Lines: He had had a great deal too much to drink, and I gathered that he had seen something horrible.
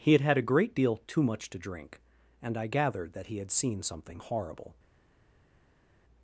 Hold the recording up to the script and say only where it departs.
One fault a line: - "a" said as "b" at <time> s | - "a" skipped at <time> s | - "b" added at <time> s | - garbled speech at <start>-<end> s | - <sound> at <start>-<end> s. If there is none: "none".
none